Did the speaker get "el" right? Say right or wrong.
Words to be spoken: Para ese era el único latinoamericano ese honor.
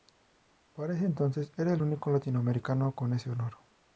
right